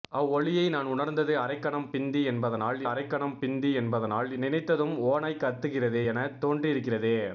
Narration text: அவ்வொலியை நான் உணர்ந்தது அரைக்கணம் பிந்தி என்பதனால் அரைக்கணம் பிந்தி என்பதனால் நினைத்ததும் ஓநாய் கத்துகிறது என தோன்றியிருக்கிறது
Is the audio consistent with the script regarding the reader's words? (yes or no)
yes